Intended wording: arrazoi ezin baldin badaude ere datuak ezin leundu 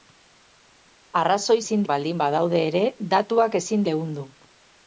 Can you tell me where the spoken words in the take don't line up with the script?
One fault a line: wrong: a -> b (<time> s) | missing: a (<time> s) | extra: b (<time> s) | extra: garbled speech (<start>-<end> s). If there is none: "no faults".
no faults